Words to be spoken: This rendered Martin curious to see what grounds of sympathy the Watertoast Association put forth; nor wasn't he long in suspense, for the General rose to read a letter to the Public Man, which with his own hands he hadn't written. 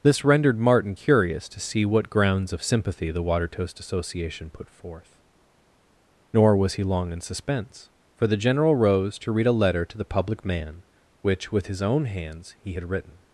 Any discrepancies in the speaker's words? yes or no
yes